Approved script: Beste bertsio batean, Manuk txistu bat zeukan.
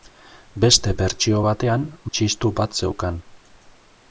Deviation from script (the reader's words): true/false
true